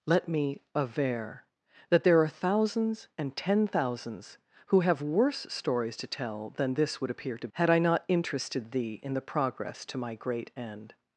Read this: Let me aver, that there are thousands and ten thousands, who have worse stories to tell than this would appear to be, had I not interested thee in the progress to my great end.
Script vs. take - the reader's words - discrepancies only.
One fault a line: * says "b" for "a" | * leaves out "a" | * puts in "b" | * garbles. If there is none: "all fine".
* leaves out "be"